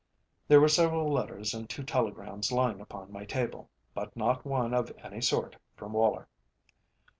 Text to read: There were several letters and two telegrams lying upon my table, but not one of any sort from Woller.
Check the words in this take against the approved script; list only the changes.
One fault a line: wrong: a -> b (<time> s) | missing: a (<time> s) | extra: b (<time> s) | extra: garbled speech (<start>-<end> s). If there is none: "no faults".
no faults